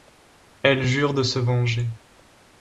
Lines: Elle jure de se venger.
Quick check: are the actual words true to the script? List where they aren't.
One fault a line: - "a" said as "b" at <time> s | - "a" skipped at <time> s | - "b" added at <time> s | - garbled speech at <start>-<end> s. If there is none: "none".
none